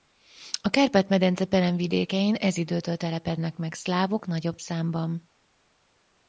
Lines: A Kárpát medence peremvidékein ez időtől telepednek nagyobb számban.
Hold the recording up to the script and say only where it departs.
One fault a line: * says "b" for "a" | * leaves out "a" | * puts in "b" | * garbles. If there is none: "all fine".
* puts in "meg szlávok"